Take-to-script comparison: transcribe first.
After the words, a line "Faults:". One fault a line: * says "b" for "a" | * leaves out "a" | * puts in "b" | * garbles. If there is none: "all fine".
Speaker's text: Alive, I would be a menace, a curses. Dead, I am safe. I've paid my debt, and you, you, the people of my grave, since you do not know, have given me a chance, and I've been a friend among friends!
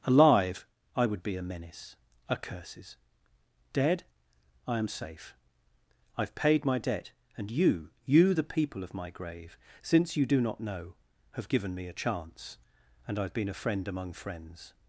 Alive, I would be a menace, a curses. Dead, I am safe. I've paid my debt, and you, you, the people of my grave, since you do not know, have given me a chance, and I've been a friend among friends!
Faults:
all fine